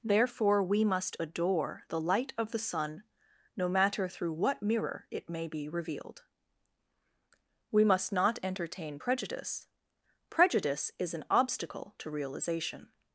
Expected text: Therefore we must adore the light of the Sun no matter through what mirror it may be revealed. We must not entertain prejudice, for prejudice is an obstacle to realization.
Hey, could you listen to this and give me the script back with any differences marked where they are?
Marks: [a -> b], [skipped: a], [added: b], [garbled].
Therefore we must adore the light of the Sun no matter through what mirror it may be revealed. We must not entertain prejudice, [skipped: for] prejudice is an obstacle to realization.